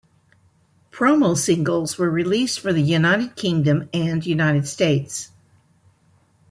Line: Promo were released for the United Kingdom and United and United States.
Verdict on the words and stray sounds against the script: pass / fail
fail